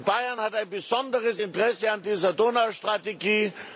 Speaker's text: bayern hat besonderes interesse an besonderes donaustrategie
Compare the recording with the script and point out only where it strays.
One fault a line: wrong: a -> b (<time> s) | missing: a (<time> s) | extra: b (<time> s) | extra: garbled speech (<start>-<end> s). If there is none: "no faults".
extra: ein (0.5 s)
wrong: besonderes -> dieser (2.0 s)